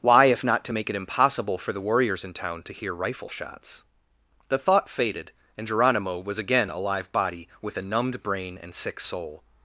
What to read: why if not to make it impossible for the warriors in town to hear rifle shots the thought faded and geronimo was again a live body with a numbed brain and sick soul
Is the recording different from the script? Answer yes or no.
no